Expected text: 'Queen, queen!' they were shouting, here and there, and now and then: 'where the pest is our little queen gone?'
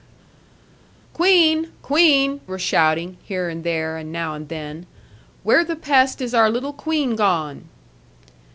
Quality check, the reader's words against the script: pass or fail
fail